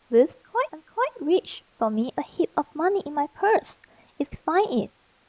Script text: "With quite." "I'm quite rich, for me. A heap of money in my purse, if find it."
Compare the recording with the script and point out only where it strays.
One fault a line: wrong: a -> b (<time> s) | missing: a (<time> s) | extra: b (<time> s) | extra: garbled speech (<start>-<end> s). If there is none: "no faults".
no faults